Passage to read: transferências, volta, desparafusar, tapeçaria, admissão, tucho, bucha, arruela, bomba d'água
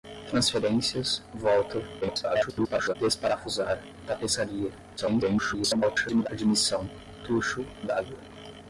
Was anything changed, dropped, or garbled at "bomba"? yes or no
yes